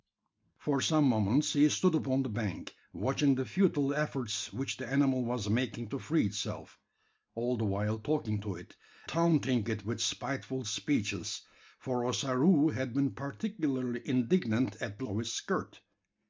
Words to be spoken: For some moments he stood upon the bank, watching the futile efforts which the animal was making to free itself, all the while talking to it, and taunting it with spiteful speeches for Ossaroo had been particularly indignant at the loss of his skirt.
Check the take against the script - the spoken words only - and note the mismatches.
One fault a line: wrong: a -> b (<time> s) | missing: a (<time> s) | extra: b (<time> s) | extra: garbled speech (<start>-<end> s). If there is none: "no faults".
missing: and (8.8 s)
missing: loss (15.1 s)